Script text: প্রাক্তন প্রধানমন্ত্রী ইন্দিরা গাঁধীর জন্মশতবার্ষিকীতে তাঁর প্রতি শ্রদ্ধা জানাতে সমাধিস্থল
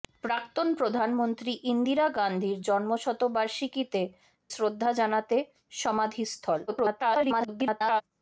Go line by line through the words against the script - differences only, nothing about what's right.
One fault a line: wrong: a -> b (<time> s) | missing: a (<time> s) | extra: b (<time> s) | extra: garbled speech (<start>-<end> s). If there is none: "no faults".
missing: তাঁর প্রতি (4.0 s)
extra: garbled speech (6.7-8.0 s)